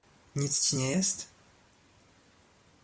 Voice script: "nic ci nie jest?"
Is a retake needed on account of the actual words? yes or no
no